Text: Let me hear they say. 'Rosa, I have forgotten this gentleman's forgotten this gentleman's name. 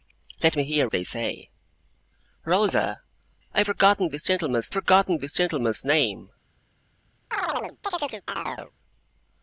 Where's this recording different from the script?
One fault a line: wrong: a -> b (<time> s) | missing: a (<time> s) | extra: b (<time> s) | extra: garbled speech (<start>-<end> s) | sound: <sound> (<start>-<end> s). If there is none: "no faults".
sound: chirp (7.3-8.7 s)